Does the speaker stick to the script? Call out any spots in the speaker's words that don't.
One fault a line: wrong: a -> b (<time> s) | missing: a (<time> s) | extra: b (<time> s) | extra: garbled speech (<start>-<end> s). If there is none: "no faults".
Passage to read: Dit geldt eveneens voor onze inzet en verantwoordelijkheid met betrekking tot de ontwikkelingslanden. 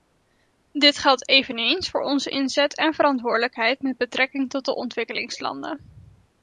no faults